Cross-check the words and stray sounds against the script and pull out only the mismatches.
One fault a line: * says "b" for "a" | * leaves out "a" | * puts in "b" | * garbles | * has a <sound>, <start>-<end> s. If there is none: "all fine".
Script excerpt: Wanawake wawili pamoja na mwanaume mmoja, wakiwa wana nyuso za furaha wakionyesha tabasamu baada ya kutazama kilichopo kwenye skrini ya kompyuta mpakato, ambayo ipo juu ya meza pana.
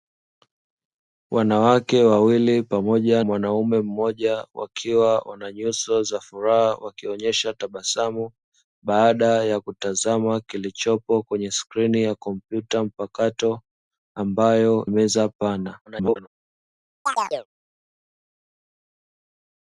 * leaves out "na"
* leaves out "ipo juu ya"
* garbles
* has a chirp, 17.1-17.5 s